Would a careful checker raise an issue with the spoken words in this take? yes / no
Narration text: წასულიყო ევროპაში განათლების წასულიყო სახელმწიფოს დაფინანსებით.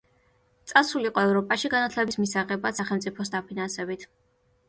yes